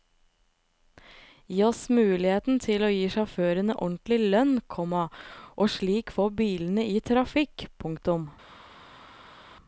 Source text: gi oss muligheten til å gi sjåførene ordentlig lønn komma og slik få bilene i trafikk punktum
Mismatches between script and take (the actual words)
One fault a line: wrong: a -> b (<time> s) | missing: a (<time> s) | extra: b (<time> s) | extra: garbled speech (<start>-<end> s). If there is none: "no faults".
no faults